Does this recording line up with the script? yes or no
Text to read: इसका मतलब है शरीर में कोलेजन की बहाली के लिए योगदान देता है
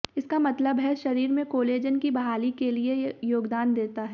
yes